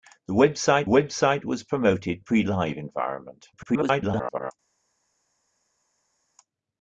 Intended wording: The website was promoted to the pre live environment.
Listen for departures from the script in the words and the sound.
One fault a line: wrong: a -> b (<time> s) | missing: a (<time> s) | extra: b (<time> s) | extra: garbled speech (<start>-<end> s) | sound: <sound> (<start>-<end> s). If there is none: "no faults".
extra: website (0.9 s)
missing: to the (2.2 s)
extra: garbled speech (3.5-4.5 s)